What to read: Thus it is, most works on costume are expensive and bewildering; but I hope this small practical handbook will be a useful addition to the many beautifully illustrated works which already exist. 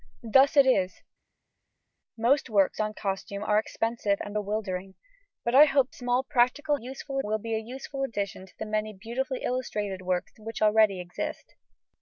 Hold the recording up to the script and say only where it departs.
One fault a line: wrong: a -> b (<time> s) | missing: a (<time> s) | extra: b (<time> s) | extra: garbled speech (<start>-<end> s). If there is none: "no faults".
missing: this (5.9 s)
wrong: handbook -> useful (6.7 s)